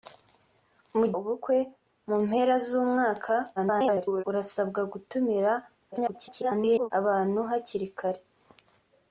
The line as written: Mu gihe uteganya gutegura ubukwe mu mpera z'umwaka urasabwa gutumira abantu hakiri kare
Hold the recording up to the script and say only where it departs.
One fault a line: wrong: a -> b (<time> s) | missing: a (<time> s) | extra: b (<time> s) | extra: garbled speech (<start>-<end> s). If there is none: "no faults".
missing: gihe uteganya gutegura (1.1 s)
extra: garbled speech (3.6-4.2 s)
extra: garbled speech (5.9-6.9 s)